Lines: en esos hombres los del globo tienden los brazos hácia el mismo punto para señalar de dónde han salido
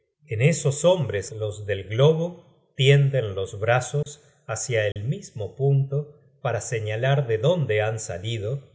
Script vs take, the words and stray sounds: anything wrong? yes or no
yes